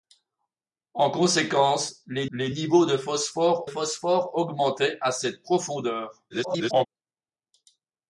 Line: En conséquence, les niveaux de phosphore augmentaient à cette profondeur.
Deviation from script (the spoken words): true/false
true